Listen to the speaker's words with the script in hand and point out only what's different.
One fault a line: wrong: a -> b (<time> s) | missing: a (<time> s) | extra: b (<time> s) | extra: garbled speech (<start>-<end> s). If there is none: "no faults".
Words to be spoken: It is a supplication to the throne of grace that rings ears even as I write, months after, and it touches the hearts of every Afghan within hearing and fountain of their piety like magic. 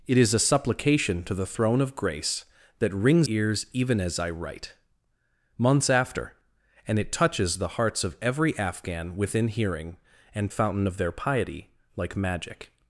no faults